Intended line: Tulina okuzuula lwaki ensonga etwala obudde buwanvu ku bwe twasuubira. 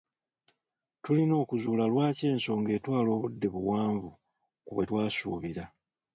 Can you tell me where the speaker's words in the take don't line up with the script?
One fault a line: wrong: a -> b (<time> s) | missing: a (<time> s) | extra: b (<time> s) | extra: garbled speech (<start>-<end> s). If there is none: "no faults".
no faults